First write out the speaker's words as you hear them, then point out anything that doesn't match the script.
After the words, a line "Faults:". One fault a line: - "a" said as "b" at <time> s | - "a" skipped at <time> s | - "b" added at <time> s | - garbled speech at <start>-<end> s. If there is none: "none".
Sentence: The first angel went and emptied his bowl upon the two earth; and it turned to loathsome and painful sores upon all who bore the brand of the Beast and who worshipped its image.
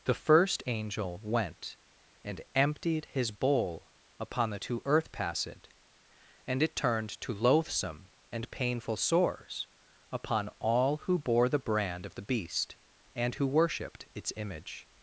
The first angel went and emptied his bowl upon the two earth; passed and it turned to loathsome and painful sores upon all who bore the brand of the Beast and who worshipped its image.
Faults:
- "passed" added at 5.1 s